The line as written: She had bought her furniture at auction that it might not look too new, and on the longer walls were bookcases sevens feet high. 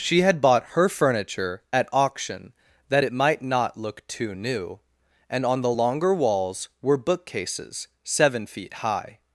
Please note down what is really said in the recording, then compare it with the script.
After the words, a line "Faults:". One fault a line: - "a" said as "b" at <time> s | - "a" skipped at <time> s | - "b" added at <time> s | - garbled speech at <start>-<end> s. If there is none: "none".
She had bought her furniture at auction that it might not look too new, and on the longer walls were bookcases seven feet high.
Faults:
- "sevens" said as "seven" at 8.0 s